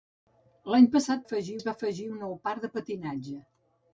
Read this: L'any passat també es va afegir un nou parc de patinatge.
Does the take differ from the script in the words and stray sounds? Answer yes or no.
yes